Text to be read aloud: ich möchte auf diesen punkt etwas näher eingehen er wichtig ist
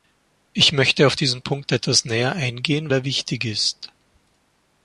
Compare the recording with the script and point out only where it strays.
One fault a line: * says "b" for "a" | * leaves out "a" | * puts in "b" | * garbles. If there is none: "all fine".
all fine